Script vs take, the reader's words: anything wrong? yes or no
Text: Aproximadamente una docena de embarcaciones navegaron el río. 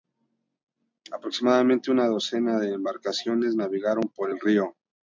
yes